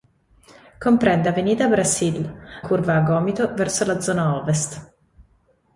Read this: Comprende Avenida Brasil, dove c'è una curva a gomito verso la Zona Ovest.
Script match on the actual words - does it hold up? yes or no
no